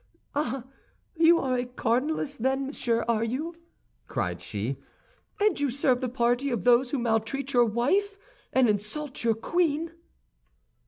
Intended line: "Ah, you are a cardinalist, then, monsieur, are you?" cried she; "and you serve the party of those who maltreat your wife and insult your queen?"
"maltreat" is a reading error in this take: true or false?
false